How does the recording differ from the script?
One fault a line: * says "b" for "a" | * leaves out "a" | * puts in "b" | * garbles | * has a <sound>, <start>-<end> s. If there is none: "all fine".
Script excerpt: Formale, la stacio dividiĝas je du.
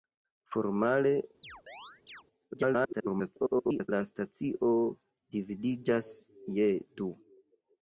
* has a chirp, 1.4-2.2 s
* garbles